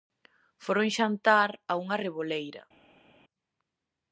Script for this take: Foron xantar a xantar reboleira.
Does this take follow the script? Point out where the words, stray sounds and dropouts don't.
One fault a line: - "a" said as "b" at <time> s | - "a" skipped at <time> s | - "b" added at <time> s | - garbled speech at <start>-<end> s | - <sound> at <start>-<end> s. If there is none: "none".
- "xantar" said as "unha" at 1.8 s